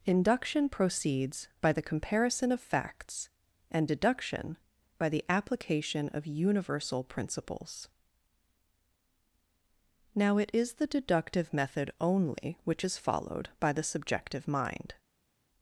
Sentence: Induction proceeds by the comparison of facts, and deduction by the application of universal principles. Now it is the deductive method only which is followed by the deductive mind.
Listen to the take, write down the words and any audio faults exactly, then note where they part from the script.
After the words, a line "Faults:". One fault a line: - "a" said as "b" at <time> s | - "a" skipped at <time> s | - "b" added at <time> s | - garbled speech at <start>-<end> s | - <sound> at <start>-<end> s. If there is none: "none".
Induction proceeds by the comparison of facts, and deduction by the application of universal principles. Now it is the deductive method only which is followed by the subjective mind.
Faults:
- "deductive" said as "subjective" at 13.8 s